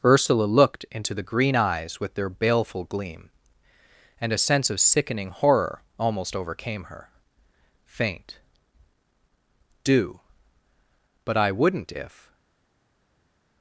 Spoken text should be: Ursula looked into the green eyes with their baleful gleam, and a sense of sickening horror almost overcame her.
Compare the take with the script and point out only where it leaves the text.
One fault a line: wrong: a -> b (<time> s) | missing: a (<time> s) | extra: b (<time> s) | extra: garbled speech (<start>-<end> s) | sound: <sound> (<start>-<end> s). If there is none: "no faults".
extra: Faint do but I wouldn't if (7.9 s)